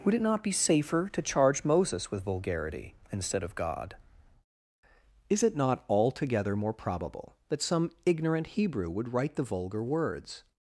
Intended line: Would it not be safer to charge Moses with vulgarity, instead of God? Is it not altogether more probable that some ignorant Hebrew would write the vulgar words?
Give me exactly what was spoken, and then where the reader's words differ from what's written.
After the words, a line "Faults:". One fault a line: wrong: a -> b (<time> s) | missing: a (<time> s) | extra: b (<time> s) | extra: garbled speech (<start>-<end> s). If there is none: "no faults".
Would it not be safer to charge Moses with vulgarity, instead of God? Is it not altogether more probable that some ignorant Hebrew would write the vulgar words?
Faults:
no faults